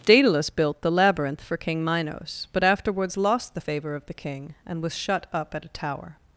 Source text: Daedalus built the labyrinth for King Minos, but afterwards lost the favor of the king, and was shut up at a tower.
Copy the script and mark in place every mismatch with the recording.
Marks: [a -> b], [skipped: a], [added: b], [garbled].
Daedalus built the labyrinth for King Minos, but afterwards lost the favor of the king, and was shut up at a tower.